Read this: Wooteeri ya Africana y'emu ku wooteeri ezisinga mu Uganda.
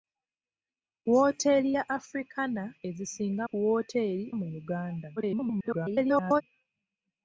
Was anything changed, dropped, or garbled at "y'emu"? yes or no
yes